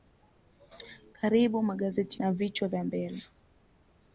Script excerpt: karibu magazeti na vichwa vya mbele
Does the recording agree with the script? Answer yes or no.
yes